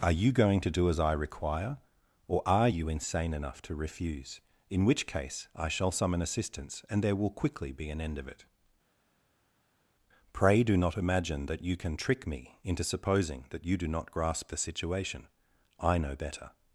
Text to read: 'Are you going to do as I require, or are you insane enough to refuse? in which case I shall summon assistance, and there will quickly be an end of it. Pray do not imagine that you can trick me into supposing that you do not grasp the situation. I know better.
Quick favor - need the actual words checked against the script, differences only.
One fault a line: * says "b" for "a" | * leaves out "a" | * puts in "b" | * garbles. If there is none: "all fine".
all fine